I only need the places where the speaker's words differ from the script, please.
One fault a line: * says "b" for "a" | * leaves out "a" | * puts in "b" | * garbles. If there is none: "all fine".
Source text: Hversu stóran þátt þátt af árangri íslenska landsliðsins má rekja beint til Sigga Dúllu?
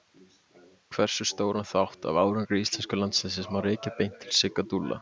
* leaves out "þátt"